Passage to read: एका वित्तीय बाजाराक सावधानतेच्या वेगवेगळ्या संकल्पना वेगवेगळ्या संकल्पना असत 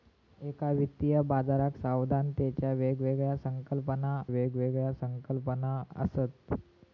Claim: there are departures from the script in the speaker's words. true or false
false